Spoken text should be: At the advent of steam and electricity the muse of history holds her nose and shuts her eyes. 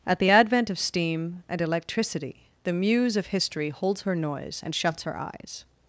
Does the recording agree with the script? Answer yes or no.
no